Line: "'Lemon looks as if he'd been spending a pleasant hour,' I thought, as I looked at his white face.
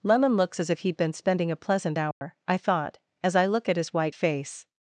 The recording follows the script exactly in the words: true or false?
false